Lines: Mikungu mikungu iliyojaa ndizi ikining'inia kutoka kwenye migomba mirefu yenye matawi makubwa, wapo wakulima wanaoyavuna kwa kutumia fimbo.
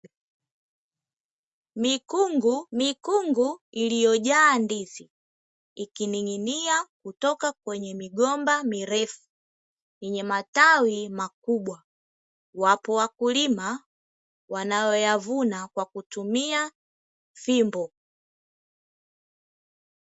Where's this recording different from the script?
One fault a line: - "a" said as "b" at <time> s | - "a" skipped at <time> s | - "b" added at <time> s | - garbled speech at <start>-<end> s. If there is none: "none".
none